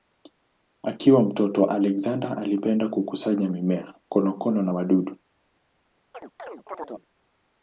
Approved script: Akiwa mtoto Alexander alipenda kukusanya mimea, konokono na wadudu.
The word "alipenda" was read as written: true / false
true